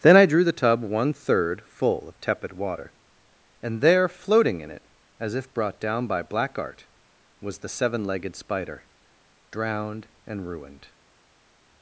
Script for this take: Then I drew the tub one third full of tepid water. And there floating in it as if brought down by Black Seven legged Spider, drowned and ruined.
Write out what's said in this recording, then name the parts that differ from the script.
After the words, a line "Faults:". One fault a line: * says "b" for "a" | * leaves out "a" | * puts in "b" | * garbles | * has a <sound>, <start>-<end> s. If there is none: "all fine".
Then I drew the tub one third full of tepid water. And there floating in it as if brought down by Black Art was the seven legged Spider, drowned and ruined.
Faults:
* puts in "Art was the"